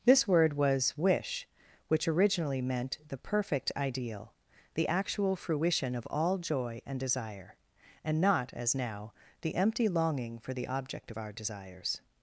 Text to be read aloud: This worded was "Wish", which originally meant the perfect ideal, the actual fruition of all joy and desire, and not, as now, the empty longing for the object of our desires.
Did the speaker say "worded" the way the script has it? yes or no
no